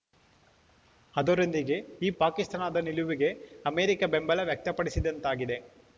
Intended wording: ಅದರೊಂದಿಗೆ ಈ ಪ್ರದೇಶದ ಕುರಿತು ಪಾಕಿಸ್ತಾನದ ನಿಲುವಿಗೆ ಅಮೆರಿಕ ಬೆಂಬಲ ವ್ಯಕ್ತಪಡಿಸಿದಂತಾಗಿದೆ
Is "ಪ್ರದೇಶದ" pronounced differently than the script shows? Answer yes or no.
yes